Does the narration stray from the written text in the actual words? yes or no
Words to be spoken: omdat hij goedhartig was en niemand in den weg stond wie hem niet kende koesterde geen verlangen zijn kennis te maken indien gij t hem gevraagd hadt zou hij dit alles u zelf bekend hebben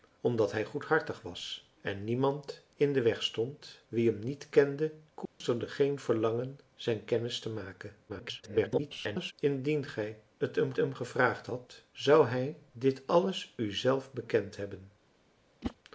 yes